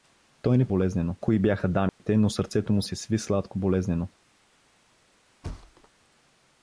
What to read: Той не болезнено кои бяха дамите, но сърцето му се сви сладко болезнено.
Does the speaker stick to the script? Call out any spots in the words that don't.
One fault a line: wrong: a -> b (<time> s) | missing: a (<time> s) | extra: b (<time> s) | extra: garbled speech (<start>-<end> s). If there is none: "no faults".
no faults